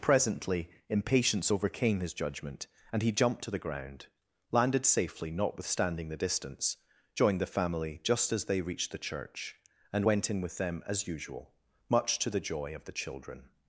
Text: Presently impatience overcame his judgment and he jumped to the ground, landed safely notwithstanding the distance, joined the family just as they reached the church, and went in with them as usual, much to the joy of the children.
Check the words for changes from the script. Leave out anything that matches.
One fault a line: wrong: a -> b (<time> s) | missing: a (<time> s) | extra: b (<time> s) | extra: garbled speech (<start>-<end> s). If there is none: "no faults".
no faults